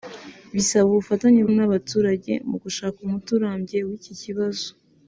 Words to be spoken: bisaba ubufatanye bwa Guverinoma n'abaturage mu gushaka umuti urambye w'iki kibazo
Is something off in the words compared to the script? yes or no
yes